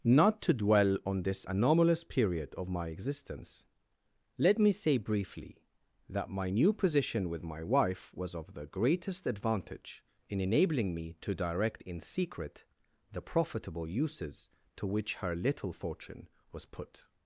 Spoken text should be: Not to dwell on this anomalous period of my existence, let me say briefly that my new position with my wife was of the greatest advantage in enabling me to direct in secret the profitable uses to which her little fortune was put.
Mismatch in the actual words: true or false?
false